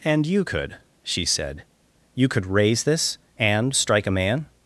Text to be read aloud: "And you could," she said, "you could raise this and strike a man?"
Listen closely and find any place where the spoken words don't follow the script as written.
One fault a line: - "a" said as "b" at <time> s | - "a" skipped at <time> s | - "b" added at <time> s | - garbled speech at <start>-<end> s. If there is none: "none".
none